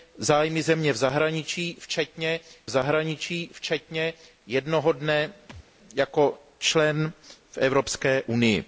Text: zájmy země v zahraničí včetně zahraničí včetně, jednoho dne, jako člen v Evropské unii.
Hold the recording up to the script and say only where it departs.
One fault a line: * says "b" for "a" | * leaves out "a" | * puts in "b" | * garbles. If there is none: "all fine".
all fine